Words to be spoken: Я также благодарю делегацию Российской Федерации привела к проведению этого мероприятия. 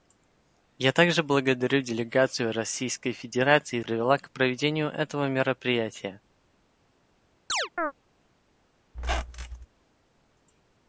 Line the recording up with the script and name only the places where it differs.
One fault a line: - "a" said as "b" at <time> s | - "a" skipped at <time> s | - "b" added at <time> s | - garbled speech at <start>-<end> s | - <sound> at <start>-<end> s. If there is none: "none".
- chirp at 7.5-7.9 s
- squeak at 8.9-9.7 s